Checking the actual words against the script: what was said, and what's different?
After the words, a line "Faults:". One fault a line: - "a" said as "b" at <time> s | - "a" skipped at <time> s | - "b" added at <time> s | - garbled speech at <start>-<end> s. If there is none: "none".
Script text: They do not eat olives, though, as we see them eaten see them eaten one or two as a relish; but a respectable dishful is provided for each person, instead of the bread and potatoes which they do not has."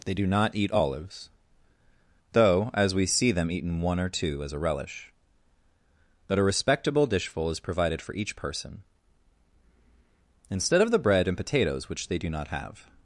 They do not eat olives, though, as we see them eaten one or two as a relish; but a respectable dishful is provided for each person, instead of the bread and potatoes which they do not have."
Faults:
- "see them eaten" skipped at 3.8 s
- "has" said as "have" at 12.5 s